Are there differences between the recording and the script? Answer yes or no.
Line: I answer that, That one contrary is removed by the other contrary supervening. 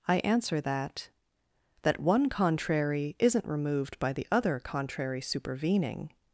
yes